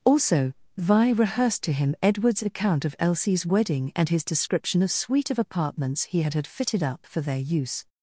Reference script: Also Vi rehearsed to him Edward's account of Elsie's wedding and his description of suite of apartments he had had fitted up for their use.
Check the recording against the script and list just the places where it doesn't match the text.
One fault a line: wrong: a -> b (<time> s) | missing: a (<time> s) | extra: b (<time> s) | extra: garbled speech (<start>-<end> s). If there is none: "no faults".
no faults